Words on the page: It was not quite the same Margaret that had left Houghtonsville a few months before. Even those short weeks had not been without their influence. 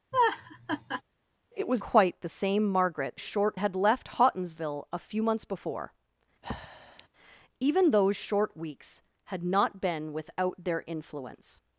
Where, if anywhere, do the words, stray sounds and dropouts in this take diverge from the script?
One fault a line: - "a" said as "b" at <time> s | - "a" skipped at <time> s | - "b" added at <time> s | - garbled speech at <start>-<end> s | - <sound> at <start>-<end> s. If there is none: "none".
- laugh at 0.1-1.0 s
- "not" skipped at 1.8 s
- "that" said as "short" at 3.2 s
- breath at 6.4-7.1 s